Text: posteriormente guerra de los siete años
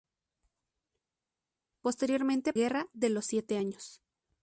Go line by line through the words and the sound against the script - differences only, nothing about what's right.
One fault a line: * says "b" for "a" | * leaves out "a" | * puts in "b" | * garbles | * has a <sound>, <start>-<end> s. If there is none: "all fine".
all fine